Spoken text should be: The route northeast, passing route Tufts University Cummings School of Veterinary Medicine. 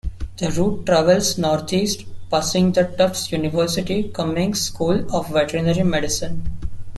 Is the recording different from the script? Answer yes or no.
yes